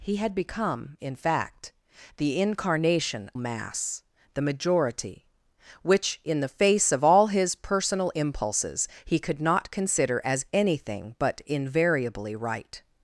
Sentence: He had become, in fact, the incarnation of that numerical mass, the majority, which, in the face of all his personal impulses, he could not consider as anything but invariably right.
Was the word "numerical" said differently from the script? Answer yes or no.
yes